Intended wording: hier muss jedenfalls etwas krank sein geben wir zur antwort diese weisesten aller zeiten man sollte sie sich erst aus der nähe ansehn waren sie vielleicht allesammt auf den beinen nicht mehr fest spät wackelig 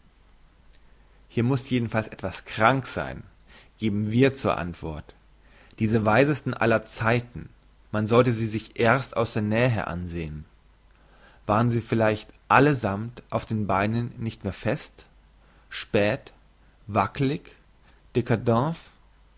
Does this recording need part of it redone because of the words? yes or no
no